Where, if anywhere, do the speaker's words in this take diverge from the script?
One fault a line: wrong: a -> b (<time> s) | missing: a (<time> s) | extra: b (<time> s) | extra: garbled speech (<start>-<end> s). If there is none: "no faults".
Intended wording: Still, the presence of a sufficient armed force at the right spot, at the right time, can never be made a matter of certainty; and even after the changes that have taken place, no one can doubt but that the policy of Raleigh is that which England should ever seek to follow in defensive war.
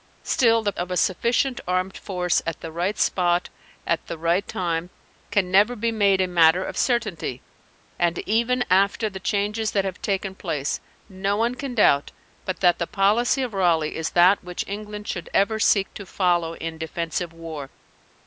missing: presence (0.7 s)